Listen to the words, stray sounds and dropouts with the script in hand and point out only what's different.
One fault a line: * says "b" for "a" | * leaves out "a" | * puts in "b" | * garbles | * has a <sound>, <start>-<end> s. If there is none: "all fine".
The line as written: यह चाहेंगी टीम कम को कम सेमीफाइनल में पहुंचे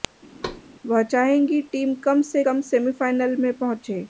* has a thud, 0.4-0.6 s
* says "वह" for "यह"
* says "से" for "को"